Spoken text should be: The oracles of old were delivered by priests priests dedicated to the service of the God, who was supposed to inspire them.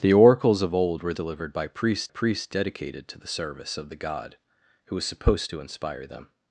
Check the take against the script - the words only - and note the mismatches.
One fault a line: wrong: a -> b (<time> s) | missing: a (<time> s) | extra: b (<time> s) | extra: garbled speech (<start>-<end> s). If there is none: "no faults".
no faults